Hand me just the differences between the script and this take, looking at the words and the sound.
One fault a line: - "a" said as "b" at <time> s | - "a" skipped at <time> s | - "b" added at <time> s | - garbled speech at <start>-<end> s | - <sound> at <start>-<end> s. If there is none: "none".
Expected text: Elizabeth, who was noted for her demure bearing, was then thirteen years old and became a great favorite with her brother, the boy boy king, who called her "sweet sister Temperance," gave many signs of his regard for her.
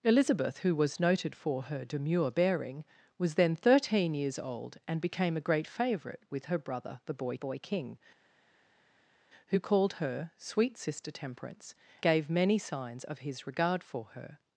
none